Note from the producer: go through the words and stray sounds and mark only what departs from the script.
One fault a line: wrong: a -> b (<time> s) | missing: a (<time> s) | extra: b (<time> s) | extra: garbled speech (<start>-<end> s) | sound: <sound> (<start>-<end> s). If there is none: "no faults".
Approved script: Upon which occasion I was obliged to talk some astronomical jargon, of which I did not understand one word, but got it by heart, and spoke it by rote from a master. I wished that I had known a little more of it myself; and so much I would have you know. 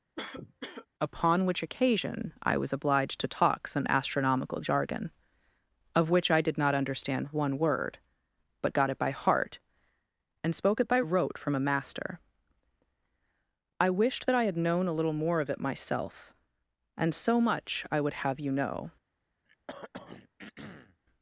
sound: cough (0.2-0.9 s)
sound: throat clearing (19.5-21.0 s)